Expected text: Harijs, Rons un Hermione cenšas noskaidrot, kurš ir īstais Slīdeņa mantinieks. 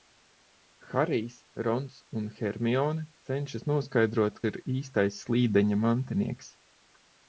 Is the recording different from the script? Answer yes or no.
yes